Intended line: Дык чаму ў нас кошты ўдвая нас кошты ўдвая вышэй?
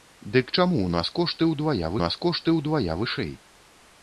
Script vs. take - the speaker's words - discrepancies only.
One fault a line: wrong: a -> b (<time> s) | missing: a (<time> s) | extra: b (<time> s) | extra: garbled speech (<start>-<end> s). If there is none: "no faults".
no faults